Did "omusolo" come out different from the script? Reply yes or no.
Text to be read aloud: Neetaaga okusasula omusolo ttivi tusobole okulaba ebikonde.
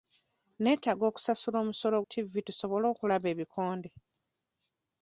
no